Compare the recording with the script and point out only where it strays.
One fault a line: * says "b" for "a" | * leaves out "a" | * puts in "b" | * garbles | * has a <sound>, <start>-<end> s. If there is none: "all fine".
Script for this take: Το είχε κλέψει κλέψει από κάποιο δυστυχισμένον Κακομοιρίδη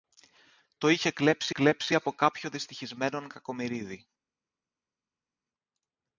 all fine